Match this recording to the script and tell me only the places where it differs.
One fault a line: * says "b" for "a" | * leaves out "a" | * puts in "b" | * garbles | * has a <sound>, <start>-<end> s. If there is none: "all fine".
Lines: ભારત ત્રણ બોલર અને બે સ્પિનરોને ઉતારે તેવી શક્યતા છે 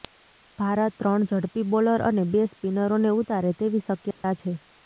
* puts in "ઝડપી"
* has a dropout, 4.1-4.2 s